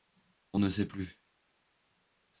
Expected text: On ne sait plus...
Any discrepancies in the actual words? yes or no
no